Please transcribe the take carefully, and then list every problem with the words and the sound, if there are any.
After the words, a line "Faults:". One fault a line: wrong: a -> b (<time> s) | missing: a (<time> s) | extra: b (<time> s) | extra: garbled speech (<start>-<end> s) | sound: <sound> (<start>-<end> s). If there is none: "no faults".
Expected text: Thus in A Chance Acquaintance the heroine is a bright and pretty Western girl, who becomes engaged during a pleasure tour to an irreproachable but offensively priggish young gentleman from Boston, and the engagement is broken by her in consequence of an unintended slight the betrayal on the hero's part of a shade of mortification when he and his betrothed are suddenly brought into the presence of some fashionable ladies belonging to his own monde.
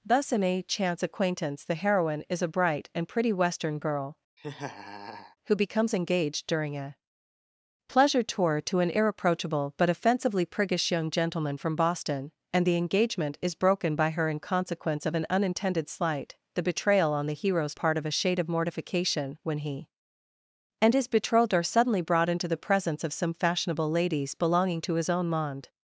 Thus in A Chance Acquaintance the heroine is a bright and pretty Western girl, who becomes engaged during a pleasure tour to an irreproachable but offensively priggish young gentleman from Boston, and the engagement is broken by her in consequence of an unintended slight the betrayal on the hero's part of a shade of mortification when he and his betrothed are suddenly brought into the presence of some fashionable ladies belonging to his own monde.
Faults:
sound: laugh (4.4-5.4 s)